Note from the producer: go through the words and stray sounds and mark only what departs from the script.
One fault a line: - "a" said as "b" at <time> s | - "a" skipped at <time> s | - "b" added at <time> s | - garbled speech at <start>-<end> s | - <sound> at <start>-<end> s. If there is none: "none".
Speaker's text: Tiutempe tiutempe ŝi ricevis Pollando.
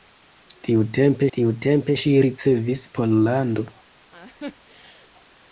- laugh at 4.1-5.1 s